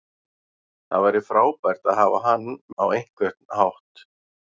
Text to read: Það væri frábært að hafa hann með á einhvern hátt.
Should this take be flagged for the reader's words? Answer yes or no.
yes